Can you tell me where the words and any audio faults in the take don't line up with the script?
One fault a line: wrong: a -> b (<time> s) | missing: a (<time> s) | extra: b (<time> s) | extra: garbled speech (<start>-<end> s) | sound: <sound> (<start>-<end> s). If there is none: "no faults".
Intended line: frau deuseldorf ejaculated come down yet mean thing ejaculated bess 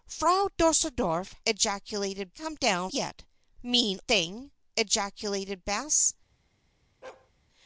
sound: bark (7.0-7.3 s)